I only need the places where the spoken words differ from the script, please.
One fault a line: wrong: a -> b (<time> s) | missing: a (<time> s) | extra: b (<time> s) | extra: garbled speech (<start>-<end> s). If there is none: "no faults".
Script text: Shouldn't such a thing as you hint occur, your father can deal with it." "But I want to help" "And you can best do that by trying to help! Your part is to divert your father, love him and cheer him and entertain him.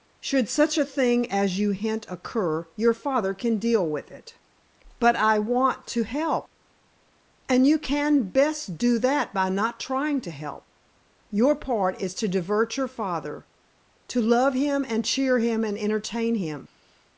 wrong: Shouldn't -> Should (0.2 s)
extra: not (9.5 s)
extra: to (14.1 s)